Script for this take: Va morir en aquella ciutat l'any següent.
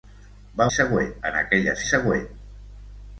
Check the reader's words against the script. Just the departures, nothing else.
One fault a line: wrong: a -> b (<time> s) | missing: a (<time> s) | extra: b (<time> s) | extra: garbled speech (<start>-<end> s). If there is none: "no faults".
wrong: morir -> següent (0.8 s)
missing: ciutat l'any (1.8 s)